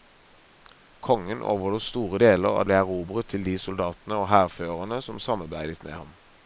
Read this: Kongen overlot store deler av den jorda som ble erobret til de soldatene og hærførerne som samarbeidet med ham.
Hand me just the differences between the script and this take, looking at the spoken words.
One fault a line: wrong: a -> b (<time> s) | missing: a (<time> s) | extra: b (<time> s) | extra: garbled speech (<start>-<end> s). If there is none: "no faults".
missing: den jorda som (2.7 s)